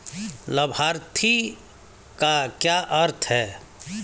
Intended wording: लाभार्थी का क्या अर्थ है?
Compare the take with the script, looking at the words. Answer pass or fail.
pass